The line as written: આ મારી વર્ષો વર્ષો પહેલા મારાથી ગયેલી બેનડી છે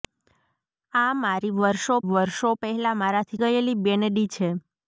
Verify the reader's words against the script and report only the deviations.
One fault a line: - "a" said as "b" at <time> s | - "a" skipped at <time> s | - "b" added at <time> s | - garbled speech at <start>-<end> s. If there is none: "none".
none